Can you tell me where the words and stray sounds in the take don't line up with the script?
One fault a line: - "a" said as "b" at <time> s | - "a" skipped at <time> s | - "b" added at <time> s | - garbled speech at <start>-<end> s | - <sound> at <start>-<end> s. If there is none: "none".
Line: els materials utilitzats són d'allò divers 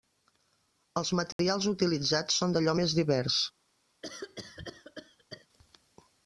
- dropout at 1.3-1.4 s
- "més" added at 2.8 s
- cough at 4.0-5.5 s